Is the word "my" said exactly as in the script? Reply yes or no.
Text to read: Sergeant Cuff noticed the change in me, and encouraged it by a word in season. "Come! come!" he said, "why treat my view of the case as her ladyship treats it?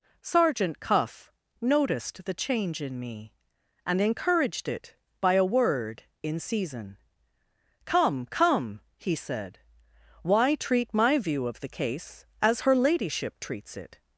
yes